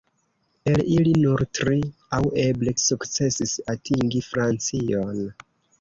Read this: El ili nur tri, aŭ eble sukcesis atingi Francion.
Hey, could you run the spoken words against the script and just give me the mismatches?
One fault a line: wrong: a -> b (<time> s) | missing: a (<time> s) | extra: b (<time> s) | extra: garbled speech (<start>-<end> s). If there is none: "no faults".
no faults